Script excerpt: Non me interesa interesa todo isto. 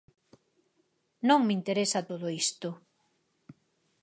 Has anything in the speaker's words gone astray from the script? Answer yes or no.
yes